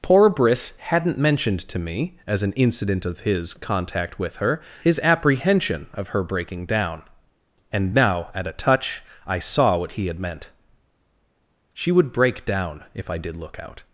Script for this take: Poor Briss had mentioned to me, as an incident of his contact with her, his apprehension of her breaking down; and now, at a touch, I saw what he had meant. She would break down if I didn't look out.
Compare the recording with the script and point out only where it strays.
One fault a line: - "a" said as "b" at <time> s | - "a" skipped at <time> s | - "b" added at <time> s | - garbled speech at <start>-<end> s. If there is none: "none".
- "had" said as "hadn't" at 0.8 s
- "didn't" said as "did" at 13.2 s